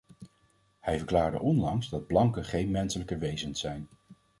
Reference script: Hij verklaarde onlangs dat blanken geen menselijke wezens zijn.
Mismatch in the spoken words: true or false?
false